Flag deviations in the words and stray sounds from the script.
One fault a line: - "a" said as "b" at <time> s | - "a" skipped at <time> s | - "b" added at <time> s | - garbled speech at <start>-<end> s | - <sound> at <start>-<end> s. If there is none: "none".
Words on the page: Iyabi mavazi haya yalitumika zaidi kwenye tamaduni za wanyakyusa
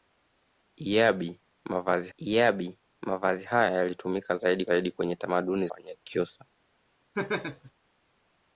- "iyabi mavazi" added at 2.2 s
- "zaidi" added at 4.6 s
- "za" skipped at 5.7 s
- laugh at 7.1-7.7 s